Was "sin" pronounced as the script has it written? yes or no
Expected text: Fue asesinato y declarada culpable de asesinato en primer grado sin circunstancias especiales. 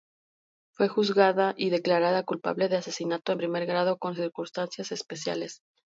no